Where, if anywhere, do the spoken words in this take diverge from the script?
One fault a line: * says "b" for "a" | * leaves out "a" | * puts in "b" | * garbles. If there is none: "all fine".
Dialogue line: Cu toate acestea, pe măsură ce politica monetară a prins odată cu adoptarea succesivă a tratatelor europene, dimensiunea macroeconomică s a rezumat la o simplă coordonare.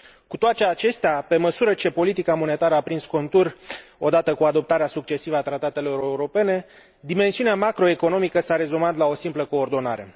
* puts in "contur"